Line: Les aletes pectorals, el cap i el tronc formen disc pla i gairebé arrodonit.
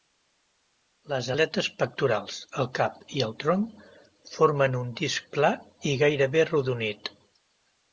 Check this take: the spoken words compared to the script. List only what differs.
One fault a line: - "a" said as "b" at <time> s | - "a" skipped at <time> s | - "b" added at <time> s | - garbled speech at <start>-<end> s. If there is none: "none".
- "un" added at 4.9 s